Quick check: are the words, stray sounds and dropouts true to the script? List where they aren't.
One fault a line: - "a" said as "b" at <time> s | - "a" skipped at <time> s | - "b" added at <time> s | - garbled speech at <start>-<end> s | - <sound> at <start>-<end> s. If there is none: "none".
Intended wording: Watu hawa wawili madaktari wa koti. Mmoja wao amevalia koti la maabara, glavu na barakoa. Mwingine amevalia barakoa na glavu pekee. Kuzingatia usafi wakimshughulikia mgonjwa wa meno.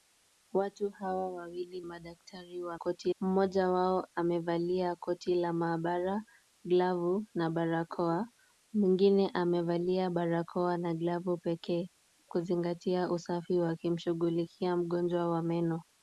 none